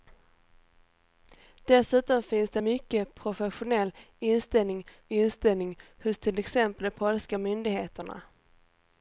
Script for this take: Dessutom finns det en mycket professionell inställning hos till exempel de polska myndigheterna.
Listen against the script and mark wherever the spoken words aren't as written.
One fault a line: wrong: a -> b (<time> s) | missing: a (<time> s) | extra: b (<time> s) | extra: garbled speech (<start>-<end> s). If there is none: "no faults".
missing: en (2.6 s)
extra: inställning (5.1 s)